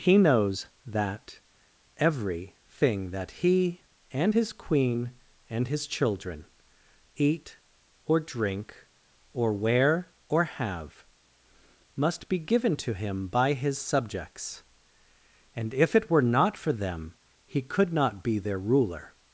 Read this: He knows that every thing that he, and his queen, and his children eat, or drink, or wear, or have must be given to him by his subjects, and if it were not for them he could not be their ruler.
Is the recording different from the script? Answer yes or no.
no